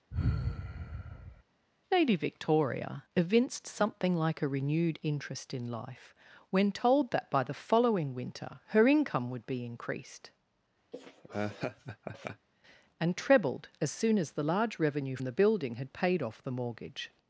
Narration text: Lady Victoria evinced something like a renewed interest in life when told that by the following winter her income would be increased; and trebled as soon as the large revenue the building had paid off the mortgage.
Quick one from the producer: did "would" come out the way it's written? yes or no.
yes